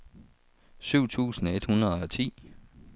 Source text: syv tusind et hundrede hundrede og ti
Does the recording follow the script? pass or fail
fail